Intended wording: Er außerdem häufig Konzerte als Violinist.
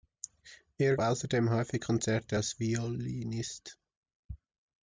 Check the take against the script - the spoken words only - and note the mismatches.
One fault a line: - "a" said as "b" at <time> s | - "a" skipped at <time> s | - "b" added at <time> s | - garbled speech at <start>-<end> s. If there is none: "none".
none